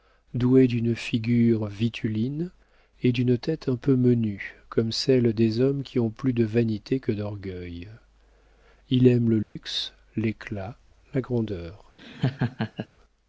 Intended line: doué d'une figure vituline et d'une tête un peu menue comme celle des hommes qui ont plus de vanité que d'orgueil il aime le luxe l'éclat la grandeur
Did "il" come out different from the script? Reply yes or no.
no